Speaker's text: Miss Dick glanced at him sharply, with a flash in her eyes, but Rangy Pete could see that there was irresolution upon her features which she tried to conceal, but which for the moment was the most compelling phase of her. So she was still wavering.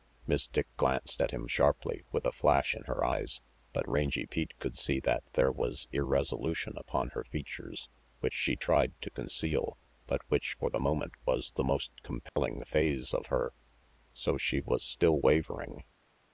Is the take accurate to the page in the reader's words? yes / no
yes